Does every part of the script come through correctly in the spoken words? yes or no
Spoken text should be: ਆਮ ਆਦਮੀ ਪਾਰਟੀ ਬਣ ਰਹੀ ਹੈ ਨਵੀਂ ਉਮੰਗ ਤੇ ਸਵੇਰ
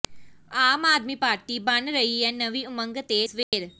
yes